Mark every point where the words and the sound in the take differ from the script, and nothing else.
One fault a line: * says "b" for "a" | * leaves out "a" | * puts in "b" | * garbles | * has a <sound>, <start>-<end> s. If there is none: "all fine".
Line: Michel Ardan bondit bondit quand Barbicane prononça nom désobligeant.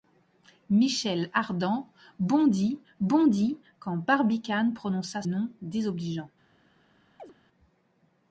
* has a chirp, 7.2-7.3 s